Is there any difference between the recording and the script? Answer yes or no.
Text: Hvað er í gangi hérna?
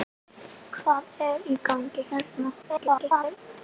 yes